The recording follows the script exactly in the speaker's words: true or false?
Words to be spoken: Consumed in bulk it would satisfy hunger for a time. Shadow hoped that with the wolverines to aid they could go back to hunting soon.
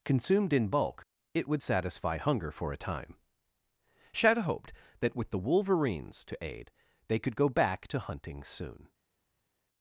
true